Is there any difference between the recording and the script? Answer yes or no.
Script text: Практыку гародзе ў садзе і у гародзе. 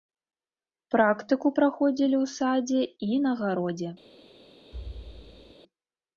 yes